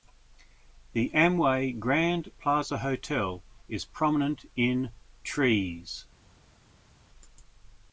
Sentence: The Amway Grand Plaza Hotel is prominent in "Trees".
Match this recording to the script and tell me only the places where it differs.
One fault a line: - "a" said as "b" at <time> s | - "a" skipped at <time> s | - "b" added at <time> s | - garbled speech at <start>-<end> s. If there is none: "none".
none